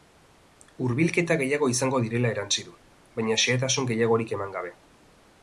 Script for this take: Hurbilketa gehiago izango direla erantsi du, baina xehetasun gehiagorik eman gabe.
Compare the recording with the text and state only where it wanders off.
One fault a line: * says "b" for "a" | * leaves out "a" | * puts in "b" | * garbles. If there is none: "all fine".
all fine